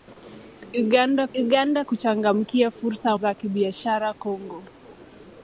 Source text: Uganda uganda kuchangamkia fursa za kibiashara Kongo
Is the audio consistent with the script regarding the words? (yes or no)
yes